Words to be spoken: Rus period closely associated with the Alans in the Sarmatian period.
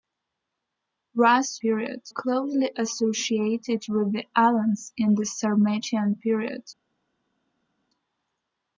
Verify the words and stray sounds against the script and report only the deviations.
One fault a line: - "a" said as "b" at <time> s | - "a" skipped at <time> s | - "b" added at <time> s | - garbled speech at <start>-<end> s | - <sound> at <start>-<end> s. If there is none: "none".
none